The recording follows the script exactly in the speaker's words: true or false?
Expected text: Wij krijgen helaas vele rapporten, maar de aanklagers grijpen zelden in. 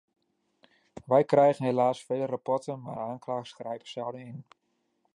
true